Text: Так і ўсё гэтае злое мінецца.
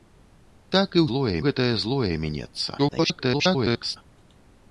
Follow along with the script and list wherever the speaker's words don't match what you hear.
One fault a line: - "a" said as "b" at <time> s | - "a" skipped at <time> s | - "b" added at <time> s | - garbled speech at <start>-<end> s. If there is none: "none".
- "ўсё" said as "злое" at 1.1 s
- garbled speech at 2.8-4.0 s